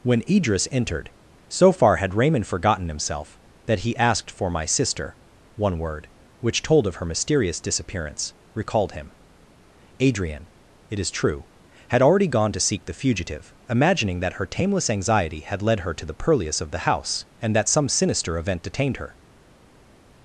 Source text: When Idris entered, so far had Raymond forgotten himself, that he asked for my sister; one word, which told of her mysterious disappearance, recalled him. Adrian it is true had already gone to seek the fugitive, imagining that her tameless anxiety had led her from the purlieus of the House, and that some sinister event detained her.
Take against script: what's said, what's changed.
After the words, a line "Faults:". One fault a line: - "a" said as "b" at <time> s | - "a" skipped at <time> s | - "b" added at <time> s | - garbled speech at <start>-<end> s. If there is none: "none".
When Idris entered, so far had Raymond forgotten himself, that he asked for my sister; one word, which told of her mysterious disappearance, recalled him. Adrian it is true had already gone to seek the fugitive, imagining that her tameless anxiety had led her to the purlieus of the House, and that some sinister event detained her.
Faults:
- "from" said as "to" at 15.9 s